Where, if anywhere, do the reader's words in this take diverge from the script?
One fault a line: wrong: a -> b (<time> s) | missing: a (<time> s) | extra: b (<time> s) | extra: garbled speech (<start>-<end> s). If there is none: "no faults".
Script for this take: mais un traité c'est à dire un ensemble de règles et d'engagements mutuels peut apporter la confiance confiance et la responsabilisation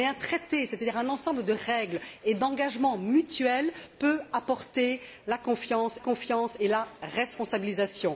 no faults